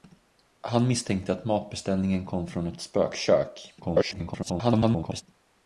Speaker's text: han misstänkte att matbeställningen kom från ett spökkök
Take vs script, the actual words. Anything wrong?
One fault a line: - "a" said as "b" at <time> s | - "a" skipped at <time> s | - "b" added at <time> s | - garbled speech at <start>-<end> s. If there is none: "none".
- garbled speech at 3.8-5.2 s